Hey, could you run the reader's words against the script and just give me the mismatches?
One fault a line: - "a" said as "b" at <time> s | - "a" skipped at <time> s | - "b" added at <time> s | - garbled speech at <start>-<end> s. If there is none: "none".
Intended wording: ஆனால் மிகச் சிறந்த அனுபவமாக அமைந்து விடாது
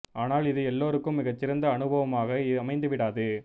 - "இது எல்லோருக்கும்" added at 0.4 s